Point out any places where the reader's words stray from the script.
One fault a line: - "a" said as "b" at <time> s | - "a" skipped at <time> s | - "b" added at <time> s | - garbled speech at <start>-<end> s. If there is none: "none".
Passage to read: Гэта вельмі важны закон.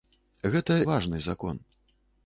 - "вельмі" skipped at 0.8 s